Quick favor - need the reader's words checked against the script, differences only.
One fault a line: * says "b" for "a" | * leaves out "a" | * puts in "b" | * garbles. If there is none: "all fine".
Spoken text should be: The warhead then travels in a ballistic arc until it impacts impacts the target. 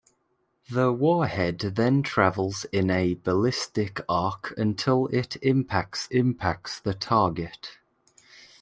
all fine